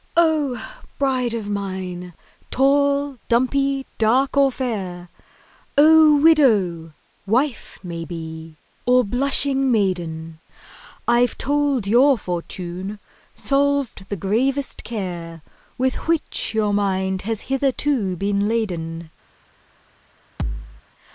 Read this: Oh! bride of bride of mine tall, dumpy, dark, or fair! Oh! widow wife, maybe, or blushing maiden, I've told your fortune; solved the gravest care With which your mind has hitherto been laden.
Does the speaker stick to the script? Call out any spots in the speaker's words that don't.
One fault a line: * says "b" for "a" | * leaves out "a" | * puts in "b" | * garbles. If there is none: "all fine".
* leaves out "bride of"